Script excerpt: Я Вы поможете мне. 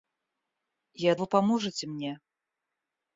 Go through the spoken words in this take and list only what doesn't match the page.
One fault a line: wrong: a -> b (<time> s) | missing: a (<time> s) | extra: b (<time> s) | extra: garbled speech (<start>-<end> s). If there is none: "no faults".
no faults